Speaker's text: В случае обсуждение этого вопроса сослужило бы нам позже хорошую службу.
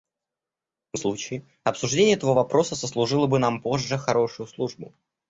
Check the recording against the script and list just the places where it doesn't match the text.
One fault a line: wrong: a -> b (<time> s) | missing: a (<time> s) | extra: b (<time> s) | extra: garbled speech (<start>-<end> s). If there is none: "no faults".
no faults